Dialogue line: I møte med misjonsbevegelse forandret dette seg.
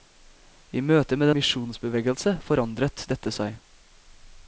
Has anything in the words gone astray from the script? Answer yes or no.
no